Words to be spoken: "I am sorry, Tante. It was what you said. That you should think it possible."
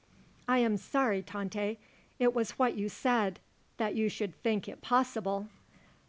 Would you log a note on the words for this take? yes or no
no